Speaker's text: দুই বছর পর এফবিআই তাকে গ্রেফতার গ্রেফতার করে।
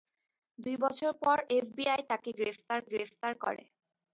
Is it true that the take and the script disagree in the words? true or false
false